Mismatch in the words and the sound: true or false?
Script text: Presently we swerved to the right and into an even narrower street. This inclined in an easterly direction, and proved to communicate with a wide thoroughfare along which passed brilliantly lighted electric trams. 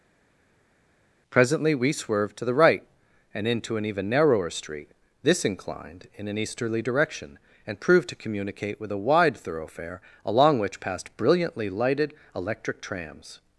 false